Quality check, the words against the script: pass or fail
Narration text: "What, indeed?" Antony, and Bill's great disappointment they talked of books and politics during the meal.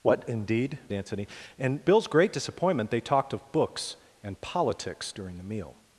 pass